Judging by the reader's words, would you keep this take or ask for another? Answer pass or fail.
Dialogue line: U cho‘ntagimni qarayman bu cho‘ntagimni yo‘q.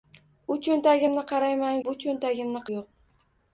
pass